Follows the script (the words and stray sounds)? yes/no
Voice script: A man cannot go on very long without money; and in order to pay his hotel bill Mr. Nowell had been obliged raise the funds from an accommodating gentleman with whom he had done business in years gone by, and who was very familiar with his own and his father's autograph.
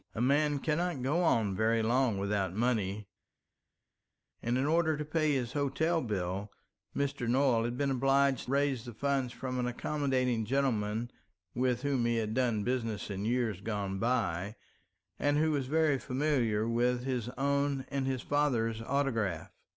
yes